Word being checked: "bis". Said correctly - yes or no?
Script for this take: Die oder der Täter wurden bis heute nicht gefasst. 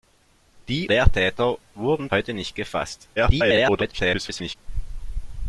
no